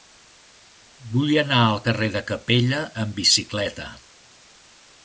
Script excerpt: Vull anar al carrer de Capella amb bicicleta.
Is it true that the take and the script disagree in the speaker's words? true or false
false